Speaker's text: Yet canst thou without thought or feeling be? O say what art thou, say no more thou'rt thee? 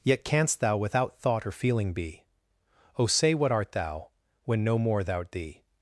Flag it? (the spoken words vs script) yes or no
yes